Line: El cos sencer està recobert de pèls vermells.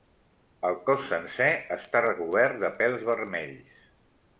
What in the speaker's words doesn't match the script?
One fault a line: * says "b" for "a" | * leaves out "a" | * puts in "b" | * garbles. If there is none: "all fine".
all fine